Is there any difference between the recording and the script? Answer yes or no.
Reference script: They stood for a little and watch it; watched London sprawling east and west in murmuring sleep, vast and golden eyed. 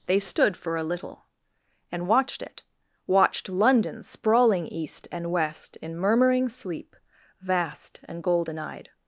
yes